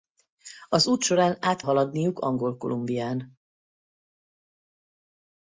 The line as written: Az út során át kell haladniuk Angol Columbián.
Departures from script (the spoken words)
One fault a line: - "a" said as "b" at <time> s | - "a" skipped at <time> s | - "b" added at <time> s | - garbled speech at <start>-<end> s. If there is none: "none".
- "kell" skipped at 1.6 s